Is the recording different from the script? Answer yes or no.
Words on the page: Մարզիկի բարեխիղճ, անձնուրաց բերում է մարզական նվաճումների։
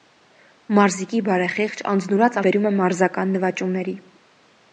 no